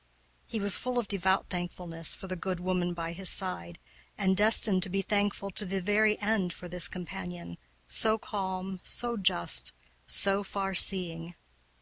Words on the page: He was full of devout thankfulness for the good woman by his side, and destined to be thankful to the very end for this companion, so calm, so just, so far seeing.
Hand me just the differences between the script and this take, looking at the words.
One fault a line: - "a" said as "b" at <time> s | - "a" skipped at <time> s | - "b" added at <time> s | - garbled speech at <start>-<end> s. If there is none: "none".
none